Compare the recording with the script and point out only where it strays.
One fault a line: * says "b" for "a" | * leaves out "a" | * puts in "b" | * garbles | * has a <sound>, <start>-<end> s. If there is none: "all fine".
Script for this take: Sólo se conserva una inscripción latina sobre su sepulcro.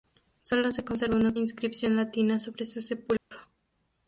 * has a dropout, 3.2-3.3 s